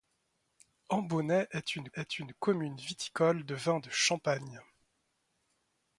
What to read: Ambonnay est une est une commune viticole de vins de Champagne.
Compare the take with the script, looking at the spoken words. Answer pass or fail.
pass